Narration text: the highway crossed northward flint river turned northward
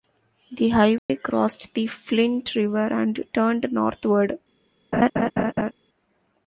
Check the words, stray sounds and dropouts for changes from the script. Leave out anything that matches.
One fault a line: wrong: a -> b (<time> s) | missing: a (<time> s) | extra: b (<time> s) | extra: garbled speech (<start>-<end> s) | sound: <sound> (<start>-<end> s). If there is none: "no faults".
sound: dropout (1.0-1.1 s)
wrong: northward -> the (1.8 s)
extra: and (2.9 s)
sound: laugh (4.9-5.7 s)